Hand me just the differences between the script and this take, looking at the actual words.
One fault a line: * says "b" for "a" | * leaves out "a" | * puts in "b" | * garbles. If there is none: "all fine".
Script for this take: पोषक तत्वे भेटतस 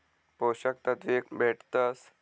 all fine